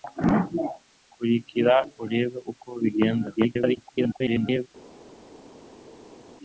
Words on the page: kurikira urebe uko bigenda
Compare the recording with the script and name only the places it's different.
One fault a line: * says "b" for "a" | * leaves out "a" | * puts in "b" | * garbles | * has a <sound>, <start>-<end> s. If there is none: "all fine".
* garbles